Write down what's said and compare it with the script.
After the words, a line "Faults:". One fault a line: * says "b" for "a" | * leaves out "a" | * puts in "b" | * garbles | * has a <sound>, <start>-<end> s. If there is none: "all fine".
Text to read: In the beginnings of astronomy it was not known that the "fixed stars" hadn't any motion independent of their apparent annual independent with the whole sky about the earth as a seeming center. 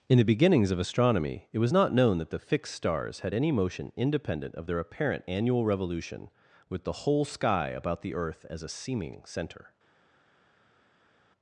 In the beginnings of astronomy it was not known that the "fixed stars" had any motion independent of their apparent annual revolution with the whole sky about the earth as a seeming center.
Faults:
* says "had" for "hadn't"
* says "revolution" for "independent"